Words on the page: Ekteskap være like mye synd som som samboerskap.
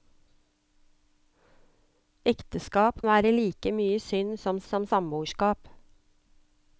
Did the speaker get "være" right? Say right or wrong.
right